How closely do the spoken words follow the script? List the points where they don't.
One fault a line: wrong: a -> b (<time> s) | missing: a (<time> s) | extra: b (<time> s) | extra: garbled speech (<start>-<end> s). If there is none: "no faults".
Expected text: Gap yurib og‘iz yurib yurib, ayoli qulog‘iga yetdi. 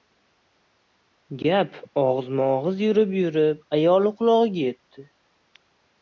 wrong: yurib -> og‘izma (2.0 s)